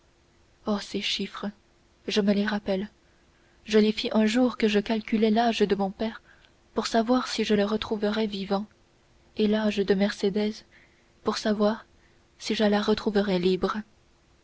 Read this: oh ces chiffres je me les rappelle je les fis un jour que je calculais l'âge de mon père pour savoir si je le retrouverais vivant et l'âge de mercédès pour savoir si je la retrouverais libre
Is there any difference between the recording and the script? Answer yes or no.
no